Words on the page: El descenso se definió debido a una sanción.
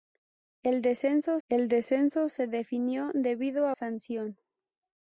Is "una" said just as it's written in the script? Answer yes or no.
no